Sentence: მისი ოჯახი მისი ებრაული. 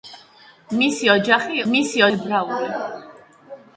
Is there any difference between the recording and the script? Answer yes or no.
no